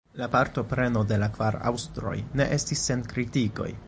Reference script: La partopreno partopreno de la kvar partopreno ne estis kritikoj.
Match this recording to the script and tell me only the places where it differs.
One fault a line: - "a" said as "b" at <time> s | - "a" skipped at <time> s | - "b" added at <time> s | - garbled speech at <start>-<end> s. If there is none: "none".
- "partopreno" skipped at 1.0 s
- "partopreno" said as "aŭstroj" at 1.7 s
- "sen" added at 2.9 s